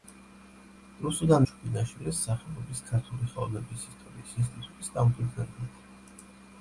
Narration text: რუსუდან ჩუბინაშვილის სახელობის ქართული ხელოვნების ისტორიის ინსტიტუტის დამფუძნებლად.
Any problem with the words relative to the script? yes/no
no